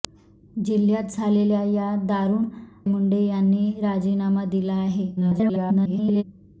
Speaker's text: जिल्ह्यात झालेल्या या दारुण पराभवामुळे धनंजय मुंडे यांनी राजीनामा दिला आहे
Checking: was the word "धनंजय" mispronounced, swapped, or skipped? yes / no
yes